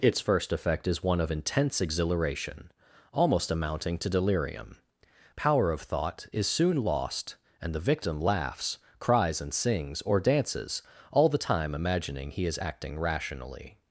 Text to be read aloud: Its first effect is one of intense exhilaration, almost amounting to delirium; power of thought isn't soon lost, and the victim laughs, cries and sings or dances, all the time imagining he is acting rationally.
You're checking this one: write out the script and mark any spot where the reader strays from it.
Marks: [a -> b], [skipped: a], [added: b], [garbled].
Its first effect is one of intense exhilaration, almost amounting to delirium; power of thought [isn't -> is] soon lost, and the victim laughs, cries and sings or dances, all the time imagining he is acting rationally.